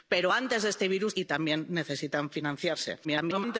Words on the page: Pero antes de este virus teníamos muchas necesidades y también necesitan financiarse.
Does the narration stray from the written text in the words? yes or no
yes